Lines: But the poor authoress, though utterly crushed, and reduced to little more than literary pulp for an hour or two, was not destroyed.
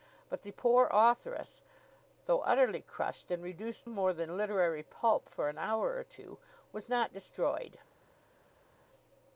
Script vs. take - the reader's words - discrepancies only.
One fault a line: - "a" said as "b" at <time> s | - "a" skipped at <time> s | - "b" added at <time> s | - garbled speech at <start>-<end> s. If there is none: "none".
- "to little" skipped at 3.9 s